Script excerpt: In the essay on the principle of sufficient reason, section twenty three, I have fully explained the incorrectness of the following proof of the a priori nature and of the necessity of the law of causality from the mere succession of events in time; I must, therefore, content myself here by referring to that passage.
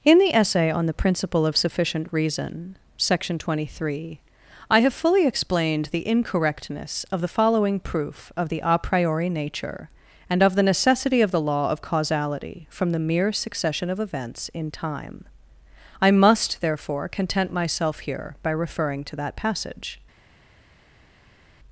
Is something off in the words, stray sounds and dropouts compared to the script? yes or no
no